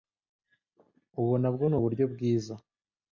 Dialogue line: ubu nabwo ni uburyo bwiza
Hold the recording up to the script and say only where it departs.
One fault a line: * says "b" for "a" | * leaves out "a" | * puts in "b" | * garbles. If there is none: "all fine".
all fine